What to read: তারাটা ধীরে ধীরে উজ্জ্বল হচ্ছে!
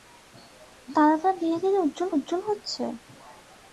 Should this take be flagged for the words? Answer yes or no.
yes